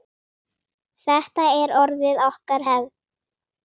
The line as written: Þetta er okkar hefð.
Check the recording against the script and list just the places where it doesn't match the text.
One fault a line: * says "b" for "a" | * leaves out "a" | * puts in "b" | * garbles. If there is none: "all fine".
* puts in "orðið"